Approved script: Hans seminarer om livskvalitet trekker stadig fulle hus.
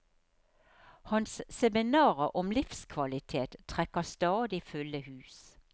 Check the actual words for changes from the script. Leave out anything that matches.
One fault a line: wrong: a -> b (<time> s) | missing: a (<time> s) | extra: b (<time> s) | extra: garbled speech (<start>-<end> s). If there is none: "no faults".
no faults